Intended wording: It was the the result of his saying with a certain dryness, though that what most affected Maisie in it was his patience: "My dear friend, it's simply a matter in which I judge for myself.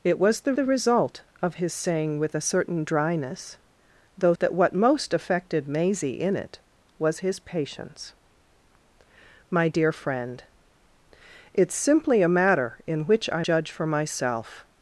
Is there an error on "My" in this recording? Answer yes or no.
no